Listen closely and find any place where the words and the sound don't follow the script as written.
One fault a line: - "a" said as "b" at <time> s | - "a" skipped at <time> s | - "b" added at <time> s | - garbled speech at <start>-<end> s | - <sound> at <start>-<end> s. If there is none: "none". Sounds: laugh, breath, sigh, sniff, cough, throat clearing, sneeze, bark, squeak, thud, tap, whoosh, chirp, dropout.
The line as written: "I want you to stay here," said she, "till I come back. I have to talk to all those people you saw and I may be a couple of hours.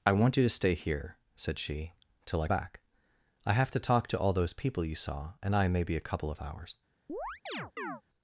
- "come" skipped at 2.5 s
- chirp at 7.1-8.0 s